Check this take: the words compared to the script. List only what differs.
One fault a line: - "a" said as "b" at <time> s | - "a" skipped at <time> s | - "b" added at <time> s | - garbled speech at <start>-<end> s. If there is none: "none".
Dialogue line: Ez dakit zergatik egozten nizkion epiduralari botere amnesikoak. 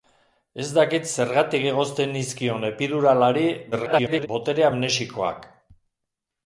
- garbled speech at 3.7-4.3 s